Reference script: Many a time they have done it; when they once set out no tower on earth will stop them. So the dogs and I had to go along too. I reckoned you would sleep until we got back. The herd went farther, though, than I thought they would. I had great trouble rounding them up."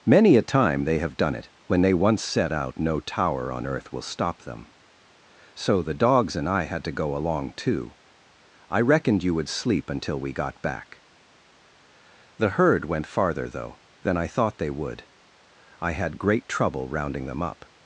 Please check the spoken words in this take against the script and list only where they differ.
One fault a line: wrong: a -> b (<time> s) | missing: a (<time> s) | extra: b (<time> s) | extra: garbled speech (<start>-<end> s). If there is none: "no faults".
no faults